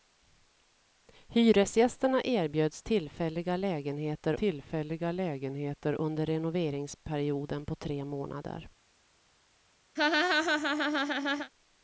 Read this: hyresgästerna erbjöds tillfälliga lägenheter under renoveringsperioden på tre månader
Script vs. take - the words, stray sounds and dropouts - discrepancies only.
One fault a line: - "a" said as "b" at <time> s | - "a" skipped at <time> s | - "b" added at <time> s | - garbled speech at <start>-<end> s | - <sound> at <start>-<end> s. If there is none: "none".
- "tillfälliga lägenheter" added at 4.3 s
- laugh at 10.0-11.5 s